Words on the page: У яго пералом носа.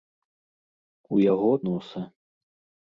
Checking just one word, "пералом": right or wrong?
wrong